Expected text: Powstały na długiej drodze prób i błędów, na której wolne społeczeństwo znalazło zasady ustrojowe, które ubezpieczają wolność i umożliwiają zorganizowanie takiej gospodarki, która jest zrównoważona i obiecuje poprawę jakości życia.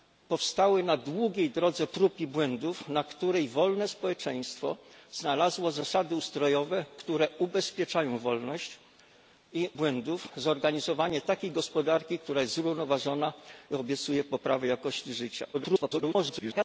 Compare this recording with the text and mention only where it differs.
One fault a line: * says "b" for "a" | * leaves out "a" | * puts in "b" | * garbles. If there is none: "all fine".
* says "błędów" for "umożliwiają"
* garbles